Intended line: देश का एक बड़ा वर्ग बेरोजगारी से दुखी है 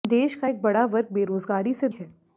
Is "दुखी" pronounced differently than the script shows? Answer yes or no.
yes